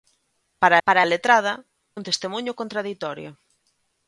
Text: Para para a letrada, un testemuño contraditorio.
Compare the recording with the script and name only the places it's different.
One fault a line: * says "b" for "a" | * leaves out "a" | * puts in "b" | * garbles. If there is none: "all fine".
all fine